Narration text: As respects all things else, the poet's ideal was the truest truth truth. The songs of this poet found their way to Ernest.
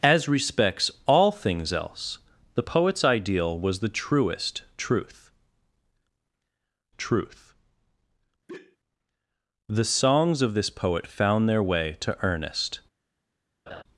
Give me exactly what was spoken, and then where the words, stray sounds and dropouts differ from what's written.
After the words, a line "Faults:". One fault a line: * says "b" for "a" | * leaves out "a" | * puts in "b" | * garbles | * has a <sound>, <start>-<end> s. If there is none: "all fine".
As respects all things else, the poet's ideal was the truest truth truth. The songs of this poet found their way to Ernest.
Faults:
* has a sigh, 8.5-8.8 s
* has a laugh, 13.7-13.8 s